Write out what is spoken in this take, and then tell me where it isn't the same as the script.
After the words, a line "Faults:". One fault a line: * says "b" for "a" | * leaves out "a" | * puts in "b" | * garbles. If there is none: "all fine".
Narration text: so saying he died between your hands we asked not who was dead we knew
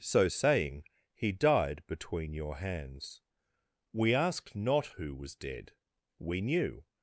so saying he died between your hands we asked not who was dead we knew
Faults:
all fine